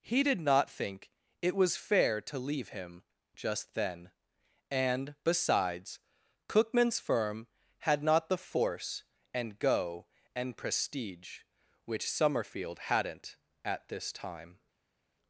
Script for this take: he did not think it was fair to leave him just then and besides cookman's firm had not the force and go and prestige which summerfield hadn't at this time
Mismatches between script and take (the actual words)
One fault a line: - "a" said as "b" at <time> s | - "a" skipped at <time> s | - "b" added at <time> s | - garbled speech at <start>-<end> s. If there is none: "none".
none